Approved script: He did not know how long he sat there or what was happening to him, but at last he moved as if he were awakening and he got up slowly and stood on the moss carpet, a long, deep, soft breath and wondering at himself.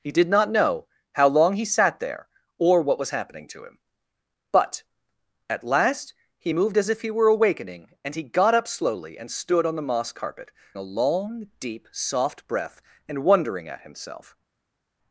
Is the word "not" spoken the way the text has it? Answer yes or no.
yes